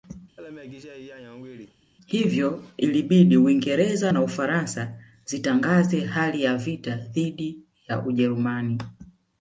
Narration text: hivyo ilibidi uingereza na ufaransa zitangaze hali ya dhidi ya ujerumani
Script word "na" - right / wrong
right